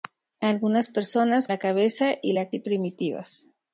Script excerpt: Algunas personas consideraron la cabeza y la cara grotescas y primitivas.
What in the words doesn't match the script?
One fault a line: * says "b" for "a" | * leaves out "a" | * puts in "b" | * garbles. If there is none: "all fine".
* leaves out "consideraron"
* leaves out "cara grotescas"